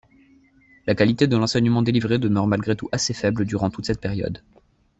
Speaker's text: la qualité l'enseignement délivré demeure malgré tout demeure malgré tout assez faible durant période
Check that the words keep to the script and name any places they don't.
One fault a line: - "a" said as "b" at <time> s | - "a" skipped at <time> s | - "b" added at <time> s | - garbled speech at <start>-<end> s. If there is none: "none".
- "de" added at 1.3 s
- "demeure malgré tout" skipped at 2.9 s
- "toute cette" added at 3.7 s